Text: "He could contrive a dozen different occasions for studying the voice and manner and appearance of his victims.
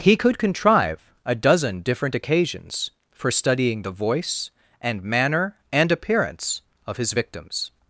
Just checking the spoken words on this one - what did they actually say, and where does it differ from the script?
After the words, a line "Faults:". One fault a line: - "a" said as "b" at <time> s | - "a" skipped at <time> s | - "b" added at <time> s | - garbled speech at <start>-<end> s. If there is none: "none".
"He could contrive a dozen different occasions for studying the voice and manner and appearance of his victims.
Faults:
none